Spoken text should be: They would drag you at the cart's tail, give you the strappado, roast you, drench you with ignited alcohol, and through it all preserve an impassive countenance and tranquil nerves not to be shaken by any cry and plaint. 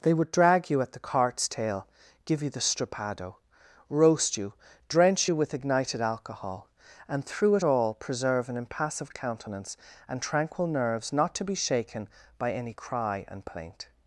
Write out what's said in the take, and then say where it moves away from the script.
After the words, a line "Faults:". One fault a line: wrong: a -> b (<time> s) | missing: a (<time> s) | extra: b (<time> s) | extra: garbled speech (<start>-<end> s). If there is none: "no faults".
They would drag you at the cart's tail, give you the strappado, roast you, drench you with ignited alcohol, and through it all preserve an impassive countenance and tranquil nerves not to be shaken by any cry and plaint.
Faults:
no faults